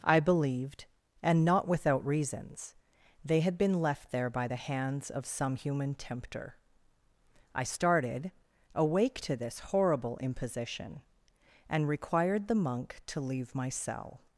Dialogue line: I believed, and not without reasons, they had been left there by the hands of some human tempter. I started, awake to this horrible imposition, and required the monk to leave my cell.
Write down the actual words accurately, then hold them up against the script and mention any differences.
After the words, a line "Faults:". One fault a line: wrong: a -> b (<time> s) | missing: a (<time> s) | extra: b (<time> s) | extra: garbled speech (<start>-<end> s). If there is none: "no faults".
I believed, and not without reasons, they had been left there by the hands of some human tempter. I started, awake to this horrible imposition, and required the monk to leave my cell.
Faults:
no faults